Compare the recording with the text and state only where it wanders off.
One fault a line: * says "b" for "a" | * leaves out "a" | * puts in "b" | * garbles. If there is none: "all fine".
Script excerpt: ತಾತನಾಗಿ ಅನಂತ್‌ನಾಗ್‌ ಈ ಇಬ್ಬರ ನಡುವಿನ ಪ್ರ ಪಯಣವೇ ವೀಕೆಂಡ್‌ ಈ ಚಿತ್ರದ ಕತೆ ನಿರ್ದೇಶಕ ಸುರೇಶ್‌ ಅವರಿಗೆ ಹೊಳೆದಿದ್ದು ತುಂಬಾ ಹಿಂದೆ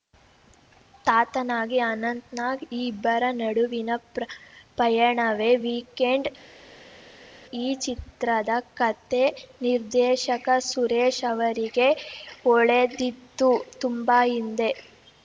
all fine